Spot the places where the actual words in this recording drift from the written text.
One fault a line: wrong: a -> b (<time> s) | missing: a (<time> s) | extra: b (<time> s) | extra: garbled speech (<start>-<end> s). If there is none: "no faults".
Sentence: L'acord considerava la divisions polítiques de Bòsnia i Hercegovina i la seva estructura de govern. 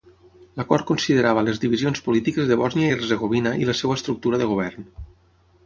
wrong: la -> les (1.5 s)